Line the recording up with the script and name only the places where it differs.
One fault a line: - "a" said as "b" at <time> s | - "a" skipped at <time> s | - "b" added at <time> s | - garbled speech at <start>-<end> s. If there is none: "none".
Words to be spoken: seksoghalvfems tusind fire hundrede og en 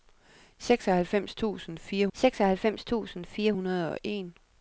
- "seksoghalvfems tusind fire" added at 2.1 s